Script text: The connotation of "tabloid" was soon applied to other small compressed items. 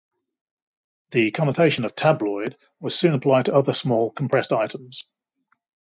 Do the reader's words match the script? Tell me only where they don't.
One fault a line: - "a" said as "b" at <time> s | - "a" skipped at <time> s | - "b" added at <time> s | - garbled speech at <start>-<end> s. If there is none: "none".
none